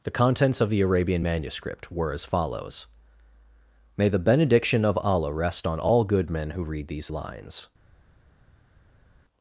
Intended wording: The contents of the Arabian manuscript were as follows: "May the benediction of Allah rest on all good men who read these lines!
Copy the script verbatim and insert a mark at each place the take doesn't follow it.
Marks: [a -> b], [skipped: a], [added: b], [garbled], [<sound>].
The contents of the Arabian manuscript were as follows: "May the benediction of Allah rest on all good men who read these lines!